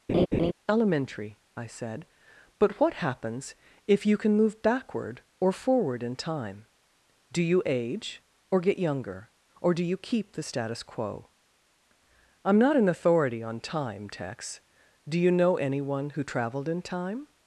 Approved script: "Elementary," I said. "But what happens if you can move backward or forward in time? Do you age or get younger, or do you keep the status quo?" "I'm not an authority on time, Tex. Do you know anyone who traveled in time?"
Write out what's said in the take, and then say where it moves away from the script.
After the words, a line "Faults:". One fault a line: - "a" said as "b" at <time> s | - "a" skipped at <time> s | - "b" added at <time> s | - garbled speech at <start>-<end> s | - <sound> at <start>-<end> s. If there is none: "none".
"Elementary," I said. "But what happens if you can move backward or forward in time? Do you age or get younger, or do you keep the status quo?" "I'm not an authority on time, Tex. Do you know anyone who traveled in time?"
Faults:
- laugh at 0.1-0.5 s